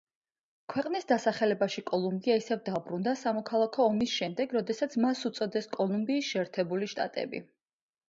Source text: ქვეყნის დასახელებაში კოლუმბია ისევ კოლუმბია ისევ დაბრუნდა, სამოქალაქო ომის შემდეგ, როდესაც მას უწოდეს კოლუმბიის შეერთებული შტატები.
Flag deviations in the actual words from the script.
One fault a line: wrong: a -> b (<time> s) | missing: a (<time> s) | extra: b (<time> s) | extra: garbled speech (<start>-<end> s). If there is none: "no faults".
missing: კოლუმბია ისევ (2.6 s)